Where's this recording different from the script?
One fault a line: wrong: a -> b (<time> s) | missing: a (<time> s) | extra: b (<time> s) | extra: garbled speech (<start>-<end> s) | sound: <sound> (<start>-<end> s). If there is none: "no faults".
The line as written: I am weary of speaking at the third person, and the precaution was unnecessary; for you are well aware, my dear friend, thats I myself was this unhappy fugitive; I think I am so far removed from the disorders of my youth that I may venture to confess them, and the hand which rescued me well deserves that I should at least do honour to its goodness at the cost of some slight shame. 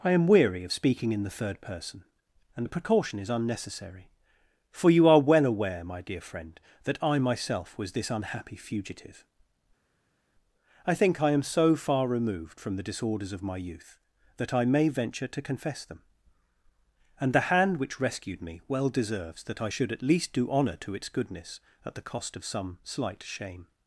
wrong: at -> in (1.1 s)
wrong: was -> is (3.2 s)
wrong: thats -> that (6.8 s)